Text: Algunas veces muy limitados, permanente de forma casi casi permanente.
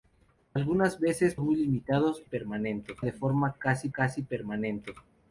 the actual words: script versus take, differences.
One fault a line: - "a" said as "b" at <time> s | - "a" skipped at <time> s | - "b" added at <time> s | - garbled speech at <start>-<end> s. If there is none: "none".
none